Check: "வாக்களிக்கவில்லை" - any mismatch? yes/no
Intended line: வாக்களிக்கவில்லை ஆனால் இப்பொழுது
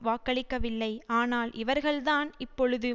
no